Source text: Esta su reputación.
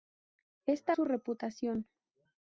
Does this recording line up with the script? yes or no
yes